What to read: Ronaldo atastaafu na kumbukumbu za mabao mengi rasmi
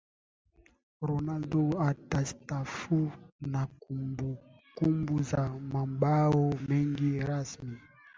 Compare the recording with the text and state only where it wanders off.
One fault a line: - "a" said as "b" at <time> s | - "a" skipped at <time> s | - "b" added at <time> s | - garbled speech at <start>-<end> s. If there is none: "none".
none